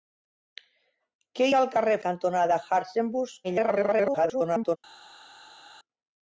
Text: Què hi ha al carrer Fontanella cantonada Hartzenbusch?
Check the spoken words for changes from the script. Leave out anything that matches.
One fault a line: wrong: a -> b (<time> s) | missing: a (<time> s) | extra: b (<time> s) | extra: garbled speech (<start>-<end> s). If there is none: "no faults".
missing: hi (1.5 s)
missing: Fontanella (2.0 s)
extra: garbled speech (3.4-4.8 s)